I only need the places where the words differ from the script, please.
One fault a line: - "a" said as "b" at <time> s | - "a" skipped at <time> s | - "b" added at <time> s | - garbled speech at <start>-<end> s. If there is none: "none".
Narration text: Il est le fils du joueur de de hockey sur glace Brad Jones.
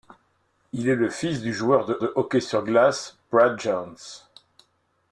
none